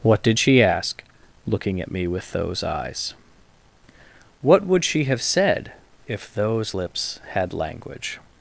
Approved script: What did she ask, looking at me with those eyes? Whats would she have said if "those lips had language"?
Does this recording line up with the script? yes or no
no